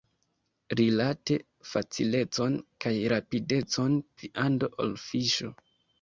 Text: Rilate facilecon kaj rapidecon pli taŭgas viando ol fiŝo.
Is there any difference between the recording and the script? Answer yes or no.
yes